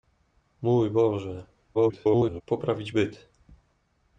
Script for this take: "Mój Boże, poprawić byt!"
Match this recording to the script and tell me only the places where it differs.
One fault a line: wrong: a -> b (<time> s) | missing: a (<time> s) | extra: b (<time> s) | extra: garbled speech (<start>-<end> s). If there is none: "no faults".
extra: garbled speech (1.7-2.4 s)